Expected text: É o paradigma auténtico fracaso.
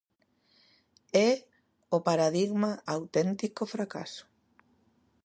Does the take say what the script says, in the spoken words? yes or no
yes